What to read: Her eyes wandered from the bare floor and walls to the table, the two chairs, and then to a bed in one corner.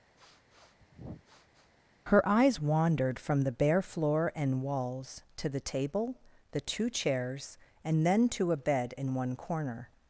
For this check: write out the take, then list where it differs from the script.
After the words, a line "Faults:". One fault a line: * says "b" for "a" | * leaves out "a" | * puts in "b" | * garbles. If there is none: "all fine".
Her eyes wandered from the bare floor and walls to the table, the two chairs, and then to a bed in one corner.
Faults:
all fine